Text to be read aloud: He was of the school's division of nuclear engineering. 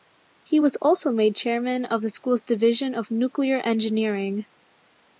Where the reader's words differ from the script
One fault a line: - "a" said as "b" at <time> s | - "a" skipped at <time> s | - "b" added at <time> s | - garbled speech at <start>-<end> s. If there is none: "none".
- "also made chairman" added at 0.8 s